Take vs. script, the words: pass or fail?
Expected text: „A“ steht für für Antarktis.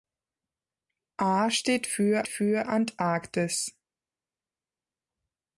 pass